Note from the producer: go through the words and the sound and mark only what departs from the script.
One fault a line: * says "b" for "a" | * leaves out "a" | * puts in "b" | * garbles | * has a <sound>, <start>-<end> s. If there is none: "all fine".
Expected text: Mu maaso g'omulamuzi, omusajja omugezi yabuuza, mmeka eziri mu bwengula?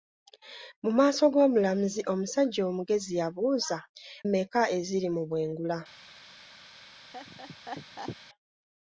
* has a laugh, 7.1-8.2 s